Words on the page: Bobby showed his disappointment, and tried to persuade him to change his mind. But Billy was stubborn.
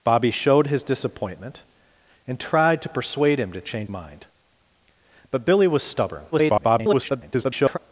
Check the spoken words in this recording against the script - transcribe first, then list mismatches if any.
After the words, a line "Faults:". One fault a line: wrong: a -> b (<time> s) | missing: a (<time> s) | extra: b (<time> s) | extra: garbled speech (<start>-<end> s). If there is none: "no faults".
Bobby showed his disappointment, and tried to persuade him to change mind. But Billy was stubborn. [garbled]
Faults:
missing: his (3.9 s)
extra: garbled speech (6.3-7.8 s)